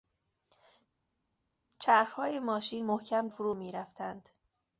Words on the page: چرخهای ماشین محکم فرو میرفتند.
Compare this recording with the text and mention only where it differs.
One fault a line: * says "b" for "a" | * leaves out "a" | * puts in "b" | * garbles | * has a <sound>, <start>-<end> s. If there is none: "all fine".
all fine